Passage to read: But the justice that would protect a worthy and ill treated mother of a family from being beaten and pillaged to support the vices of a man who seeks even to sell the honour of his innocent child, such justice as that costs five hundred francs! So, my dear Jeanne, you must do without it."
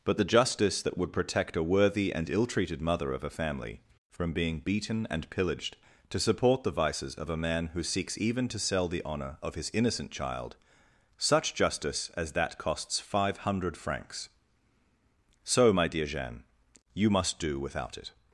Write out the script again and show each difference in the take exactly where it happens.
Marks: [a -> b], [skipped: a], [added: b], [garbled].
But the justice that would protect a worthy and ill treated mother of a family from being beaten and pillaged to support the vices of a man who seeks even to sell the honour of his innocent child, such justice as that costs five hundred francs! So, my dear Jeanne, you must do without it."